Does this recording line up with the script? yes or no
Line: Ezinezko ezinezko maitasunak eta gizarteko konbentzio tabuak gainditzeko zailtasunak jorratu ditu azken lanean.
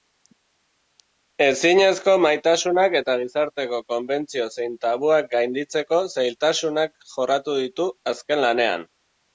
no